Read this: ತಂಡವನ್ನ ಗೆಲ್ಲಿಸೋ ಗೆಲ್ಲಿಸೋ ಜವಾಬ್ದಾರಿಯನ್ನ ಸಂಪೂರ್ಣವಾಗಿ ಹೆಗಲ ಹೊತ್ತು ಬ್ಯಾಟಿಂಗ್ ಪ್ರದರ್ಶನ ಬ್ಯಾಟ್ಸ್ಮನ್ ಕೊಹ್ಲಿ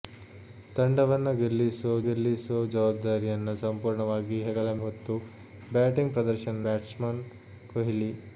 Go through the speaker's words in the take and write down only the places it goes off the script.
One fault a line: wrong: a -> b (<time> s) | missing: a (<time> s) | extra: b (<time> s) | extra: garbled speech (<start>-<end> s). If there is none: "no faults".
no faults